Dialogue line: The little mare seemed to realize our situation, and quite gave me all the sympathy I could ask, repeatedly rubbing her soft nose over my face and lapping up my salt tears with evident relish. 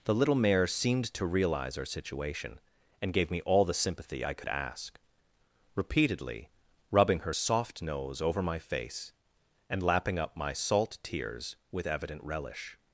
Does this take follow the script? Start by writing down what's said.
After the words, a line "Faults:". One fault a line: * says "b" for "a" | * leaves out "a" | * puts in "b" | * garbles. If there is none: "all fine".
The little mare seemed to realize our situation, and gave me all the sympathy I could ask, repeatedly rubbing her soft nose over my face and lapping up my salt tears with evident relish.
Faults:
* leaves out "quite"